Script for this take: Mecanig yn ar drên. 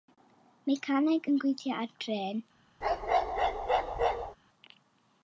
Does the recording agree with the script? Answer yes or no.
no